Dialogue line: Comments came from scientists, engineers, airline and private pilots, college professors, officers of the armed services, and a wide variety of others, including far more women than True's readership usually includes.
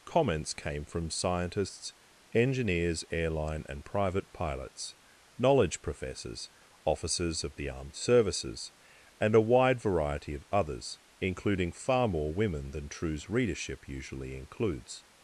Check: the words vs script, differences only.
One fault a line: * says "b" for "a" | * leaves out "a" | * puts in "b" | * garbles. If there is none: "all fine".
* says "knowledge" for "college"